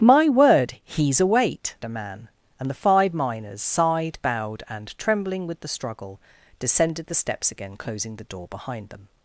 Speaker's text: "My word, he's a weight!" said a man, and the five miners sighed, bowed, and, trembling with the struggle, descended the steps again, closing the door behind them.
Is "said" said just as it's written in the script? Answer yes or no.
no